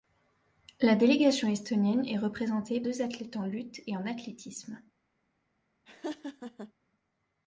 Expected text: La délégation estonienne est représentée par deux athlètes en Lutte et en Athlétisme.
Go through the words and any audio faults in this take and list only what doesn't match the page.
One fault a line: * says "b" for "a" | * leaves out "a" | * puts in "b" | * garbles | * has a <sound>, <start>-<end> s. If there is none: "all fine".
* leaves out "par"
* has a laugh, 5.9-6.7 s